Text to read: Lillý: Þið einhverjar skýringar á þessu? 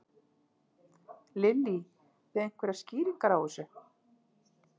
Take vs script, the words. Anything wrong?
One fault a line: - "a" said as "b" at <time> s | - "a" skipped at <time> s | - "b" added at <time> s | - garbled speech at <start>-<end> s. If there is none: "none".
none